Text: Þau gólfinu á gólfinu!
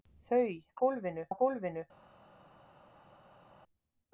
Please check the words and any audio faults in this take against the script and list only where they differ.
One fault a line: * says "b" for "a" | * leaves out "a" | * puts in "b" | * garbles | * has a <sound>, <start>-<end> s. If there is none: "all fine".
all fine